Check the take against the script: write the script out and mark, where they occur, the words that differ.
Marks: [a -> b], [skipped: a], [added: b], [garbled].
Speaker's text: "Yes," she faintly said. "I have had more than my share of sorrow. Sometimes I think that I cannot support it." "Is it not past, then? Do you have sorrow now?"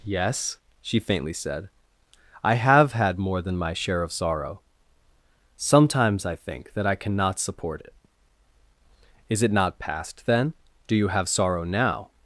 "Yes," she faintly said. "I have had more than my share of sorrow. Sometimes I think that I cannot support it." "Is it not past, then? Do you have sorrow now?"